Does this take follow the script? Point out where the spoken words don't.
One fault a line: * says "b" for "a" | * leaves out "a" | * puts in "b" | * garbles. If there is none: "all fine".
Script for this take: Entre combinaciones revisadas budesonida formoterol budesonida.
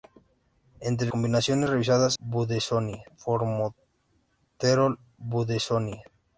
all fine